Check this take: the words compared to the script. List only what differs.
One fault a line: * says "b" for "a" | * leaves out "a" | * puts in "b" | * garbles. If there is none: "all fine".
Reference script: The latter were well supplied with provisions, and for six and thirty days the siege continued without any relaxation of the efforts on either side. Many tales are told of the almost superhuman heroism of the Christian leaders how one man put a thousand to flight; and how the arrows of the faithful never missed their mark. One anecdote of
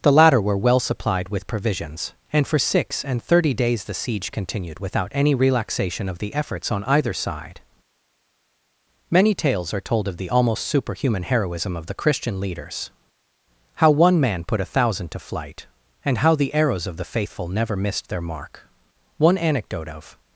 all fine